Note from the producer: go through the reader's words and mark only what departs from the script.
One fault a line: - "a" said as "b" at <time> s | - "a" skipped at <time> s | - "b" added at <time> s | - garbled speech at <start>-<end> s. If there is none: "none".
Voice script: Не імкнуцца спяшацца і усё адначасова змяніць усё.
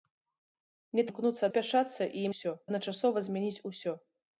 none